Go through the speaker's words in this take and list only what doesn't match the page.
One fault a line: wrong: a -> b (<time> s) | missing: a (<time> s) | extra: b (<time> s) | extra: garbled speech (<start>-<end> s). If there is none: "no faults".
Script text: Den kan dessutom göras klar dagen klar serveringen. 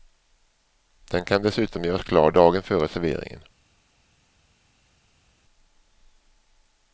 wrong: klar -> före (2.6 s)